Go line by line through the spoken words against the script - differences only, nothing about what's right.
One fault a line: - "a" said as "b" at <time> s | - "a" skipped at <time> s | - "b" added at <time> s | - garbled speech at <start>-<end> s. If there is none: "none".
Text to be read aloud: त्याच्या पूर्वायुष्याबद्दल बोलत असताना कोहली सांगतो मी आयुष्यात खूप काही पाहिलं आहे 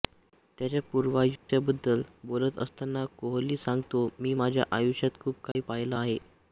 - "माझ्या" added at 4.3 s